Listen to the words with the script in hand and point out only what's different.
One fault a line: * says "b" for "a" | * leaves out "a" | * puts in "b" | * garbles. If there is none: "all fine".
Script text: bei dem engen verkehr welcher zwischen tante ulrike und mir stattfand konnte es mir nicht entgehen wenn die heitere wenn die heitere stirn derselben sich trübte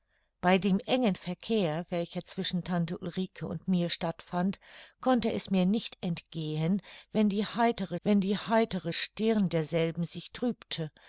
all fine